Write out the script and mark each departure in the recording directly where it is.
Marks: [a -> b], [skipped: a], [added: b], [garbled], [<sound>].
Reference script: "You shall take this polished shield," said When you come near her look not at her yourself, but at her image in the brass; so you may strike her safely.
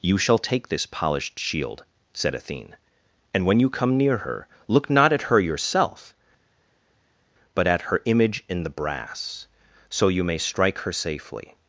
"You shall take this polished shield," said [added: Athene and] When you come near her look not at her yourself, but at her image in the brass; so you may strike her safely.